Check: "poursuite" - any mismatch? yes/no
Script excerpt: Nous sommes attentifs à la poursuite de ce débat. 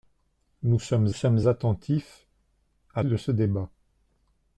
yes